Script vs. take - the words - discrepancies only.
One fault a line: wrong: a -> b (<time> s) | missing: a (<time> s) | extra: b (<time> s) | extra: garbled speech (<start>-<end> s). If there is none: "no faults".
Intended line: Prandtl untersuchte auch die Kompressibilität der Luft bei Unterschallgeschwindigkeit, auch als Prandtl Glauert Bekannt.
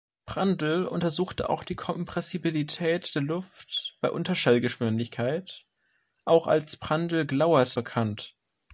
no faults